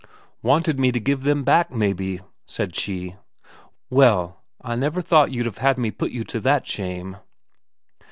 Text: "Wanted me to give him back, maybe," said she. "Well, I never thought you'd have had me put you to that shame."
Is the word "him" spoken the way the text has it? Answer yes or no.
no